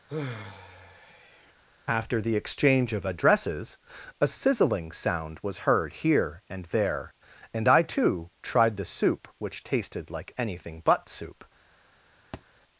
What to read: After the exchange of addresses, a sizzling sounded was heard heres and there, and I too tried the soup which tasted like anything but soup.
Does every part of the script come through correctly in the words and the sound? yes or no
no